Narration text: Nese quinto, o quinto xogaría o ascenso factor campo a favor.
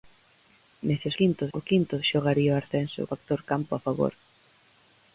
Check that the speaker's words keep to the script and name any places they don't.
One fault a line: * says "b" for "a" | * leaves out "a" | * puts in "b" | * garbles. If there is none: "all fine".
all fine